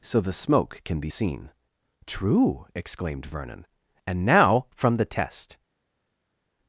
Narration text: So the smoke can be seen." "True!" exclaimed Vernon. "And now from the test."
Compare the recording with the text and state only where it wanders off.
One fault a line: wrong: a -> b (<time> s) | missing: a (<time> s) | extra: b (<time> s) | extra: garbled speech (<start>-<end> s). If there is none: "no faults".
no faults